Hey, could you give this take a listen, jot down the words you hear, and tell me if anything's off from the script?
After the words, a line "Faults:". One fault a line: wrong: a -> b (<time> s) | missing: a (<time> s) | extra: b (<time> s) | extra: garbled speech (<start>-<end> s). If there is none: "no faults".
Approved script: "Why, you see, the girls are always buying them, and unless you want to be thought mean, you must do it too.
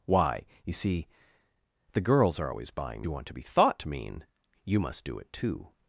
"Why, you see, the girls are always buying you want to be thought mean, you must do it too.
Faults:
missing: them and unless (3.1 s)